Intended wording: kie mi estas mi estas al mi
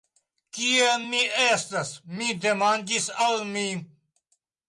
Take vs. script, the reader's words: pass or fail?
fail